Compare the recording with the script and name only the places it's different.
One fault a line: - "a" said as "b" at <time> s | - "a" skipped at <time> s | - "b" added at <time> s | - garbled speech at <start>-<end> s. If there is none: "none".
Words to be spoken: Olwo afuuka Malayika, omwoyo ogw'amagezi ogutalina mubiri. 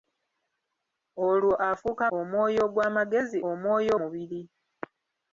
- "Malayika" skipped at 2.0 s
- "ogutalina" said as "omwoyo" at 3.5 s